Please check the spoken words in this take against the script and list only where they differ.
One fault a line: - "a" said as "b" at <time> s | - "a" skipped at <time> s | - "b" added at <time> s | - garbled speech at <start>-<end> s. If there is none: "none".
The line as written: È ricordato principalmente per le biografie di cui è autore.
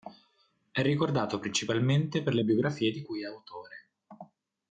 none